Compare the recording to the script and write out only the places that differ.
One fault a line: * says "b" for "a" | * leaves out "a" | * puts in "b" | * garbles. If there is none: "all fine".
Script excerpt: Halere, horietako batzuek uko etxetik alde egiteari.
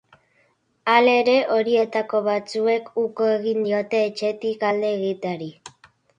* puts in "egin diote"